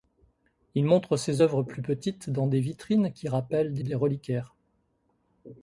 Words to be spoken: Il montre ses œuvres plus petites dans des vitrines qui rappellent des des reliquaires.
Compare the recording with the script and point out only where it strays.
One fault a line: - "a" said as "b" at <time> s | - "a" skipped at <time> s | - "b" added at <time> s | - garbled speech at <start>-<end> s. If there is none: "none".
none